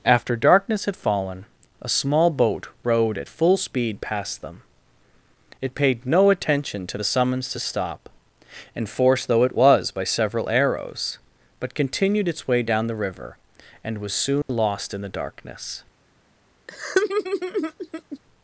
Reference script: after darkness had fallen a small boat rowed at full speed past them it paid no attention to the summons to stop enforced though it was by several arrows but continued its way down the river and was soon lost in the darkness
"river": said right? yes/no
yes